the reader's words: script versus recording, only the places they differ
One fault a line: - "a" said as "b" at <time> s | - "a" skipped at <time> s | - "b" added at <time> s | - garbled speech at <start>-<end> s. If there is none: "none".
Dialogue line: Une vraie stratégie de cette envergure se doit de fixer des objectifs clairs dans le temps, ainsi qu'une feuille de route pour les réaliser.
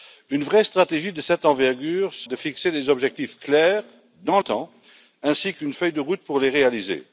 - "doit" skipped at 2.3 s
- "le" skipped at 4.4 s